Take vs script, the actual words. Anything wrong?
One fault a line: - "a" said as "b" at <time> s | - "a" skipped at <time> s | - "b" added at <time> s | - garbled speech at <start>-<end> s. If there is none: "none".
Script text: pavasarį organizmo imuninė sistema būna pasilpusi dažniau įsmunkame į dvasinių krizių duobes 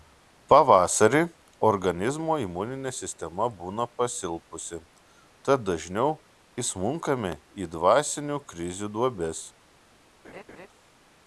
- "tad" added at 5.5 s